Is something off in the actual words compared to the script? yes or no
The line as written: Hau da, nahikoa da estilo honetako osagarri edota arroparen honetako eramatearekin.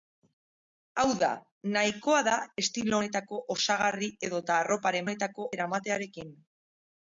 no